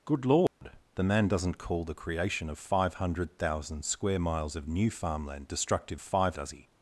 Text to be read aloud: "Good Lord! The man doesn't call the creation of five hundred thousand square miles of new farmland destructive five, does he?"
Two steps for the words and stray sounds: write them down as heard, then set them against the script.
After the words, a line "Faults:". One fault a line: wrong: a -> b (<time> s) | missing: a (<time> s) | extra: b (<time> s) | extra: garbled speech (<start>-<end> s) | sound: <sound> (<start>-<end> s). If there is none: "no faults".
"Good Lord! The man doesn't call the creation of five hundred thousand square miles of new farmland destructive five, does he?"
Faults:
sound: dropout (0.5-0.6 s)